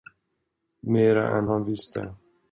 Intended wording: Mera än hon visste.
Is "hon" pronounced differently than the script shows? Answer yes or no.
yes